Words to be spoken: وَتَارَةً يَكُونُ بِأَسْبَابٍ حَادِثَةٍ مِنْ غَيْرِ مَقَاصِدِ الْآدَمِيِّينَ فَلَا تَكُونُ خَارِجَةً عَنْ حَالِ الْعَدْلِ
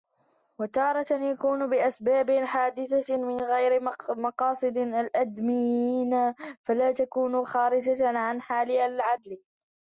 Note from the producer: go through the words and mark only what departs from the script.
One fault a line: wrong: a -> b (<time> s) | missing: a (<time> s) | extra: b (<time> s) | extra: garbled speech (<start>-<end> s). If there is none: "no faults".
no faults